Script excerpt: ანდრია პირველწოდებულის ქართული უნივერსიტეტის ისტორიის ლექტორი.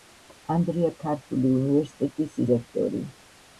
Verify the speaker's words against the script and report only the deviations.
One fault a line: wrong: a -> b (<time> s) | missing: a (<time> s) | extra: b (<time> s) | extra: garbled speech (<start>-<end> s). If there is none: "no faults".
missing: პირველწოდებულის (0.9 s)
missing: ისტორიის (2.4 s)